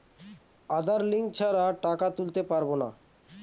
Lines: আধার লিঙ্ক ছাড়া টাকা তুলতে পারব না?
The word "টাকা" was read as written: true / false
true